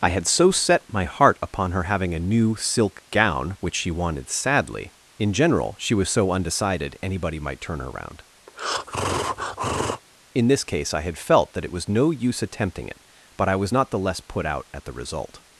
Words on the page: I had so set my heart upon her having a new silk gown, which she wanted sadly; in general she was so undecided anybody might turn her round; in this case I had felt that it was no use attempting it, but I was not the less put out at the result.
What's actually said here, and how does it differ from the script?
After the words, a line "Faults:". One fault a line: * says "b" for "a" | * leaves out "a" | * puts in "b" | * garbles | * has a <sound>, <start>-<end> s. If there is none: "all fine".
I had so set my heart upon her having a new silk gown, which she wanted sadly; in general she was so undecided anybody might turn her round; in this case I had felt that it was no use attempting it, but I was not the less put out at the result.
Faults:
* has a breath, 8.5-10.0 s